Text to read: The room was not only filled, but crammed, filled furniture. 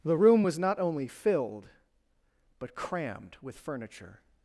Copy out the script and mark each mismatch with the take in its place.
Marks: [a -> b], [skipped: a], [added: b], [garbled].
The room was not only filled, but crammed, [filled -> with] furniture.